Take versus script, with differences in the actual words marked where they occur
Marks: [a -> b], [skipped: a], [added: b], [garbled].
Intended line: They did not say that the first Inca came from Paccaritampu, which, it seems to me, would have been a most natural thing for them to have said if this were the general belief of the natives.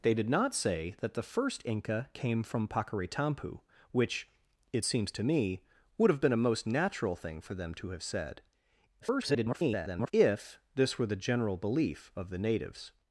They did not say that the first Inca came from Paccaritampu, which, it seems to me, would have been a most natural thing for them to have said [garbled] if this were the general belief of the natives.